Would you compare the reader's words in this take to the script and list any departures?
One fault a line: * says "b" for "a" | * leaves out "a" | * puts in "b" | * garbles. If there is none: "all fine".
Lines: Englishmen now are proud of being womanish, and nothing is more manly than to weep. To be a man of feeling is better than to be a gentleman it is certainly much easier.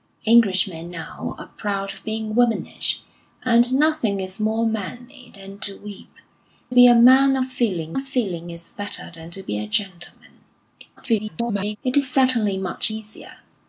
* leaves out "To"
* puts in "of feeling"
* garbles